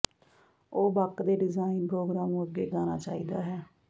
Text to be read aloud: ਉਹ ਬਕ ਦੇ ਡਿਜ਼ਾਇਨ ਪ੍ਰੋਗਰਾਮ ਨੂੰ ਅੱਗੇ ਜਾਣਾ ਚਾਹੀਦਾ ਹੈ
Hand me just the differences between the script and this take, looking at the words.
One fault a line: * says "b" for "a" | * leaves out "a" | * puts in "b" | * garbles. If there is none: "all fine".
all fine